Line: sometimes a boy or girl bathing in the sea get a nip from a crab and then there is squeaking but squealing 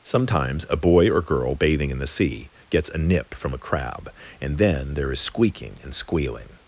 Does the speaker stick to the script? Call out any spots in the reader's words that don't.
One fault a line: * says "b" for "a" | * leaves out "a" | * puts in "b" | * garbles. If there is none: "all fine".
* says "gets" for "get"
* says "and" for "but"